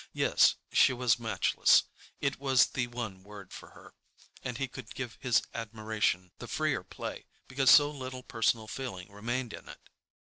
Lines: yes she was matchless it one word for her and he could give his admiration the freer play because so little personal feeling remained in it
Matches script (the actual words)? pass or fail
fail